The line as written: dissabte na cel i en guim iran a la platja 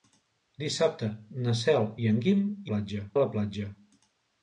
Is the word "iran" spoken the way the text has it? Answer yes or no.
no